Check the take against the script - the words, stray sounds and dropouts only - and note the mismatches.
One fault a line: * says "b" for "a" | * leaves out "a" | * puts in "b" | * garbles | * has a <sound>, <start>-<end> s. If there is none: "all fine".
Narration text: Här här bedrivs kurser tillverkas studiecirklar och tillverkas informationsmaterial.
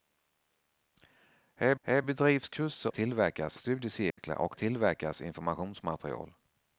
* has a dropout, 4.1-4.2 s